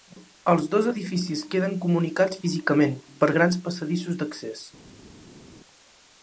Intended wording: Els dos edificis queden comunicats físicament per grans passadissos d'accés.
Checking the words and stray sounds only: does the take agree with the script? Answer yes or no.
yes